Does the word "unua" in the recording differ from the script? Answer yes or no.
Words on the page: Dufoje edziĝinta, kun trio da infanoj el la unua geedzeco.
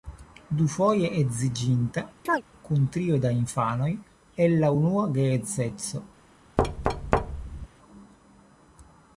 no